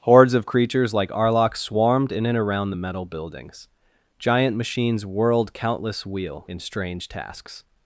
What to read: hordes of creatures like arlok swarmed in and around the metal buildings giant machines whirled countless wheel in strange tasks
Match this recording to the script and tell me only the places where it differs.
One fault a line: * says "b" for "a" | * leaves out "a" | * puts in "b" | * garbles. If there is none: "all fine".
all fine